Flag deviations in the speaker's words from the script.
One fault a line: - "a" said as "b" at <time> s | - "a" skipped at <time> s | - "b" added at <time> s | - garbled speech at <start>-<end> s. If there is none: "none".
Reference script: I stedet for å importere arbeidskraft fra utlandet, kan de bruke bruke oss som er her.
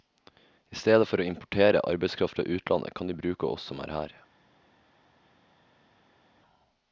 - "bruke" skipped at 3.5 s